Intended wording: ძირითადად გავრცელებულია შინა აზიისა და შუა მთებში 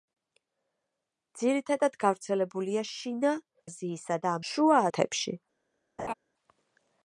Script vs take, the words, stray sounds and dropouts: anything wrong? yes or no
yes